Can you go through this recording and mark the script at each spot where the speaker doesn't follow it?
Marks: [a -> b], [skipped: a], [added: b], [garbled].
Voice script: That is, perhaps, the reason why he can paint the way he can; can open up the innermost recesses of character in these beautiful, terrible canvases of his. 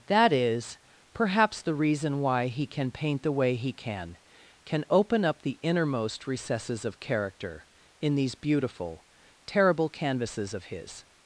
That is, perhaps, the reason why he can paint the way he can; can open up the innermost recesses of character in these beautiful, terrible canvases of his.